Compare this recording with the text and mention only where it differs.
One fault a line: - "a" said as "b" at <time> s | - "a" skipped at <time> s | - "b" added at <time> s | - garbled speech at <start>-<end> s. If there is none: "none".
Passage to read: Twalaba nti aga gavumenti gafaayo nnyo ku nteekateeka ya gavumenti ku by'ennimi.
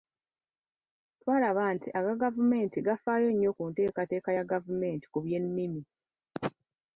none